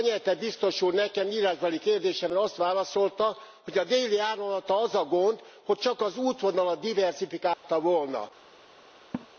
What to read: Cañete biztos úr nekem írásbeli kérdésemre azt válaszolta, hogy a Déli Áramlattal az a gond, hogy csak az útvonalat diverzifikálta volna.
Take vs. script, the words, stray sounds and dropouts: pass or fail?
fail